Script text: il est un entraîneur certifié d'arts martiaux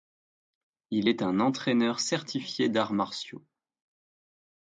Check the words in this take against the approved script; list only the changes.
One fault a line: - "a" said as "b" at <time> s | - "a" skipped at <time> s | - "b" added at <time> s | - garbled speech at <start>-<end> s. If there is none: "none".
none